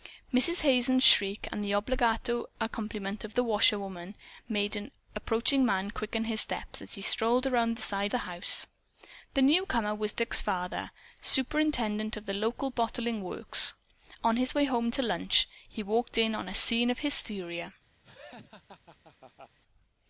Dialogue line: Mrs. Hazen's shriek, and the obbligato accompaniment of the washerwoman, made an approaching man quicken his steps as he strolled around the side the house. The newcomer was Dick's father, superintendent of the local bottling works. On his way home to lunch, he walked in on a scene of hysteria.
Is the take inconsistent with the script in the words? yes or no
no